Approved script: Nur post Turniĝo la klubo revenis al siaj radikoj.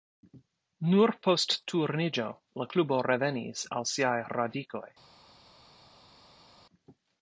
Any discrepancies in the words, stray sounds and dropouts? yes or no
no